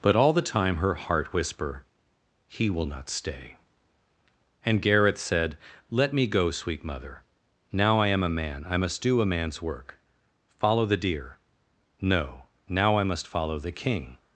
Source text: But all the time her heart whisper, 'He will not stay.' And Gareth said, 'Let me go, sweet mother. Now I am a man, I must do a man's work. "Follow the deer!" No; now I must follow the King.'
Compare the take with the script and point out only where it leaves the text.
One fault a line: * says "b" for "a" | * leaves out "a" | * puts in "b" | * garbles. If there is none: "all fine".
all fine